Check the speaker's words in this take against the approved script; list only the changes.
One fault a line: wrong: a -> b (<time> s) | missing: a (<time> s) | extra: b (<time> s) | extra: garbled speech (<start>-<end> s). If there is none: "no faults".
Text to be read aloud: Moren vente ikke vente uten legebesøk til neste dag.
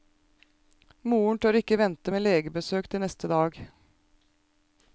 wrong: vente -> tør (1.4 s)
wrong: uten -> med (2.1 s)